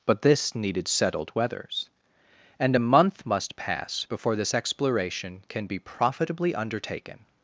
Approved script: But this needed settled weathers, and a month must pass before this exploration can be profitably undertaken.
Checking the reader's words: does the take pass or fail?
pass